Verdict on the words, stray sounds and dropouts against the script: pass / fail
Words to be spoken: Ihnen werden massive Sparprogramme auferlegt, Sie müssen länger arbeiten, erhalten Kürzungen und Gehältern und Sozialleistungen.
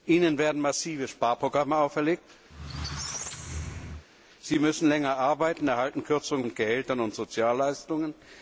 fail